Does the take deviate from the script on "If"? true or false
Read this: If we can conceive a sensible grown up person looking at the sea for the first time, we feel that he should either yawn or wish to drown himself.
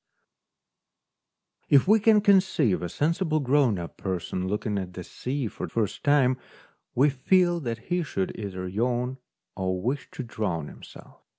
false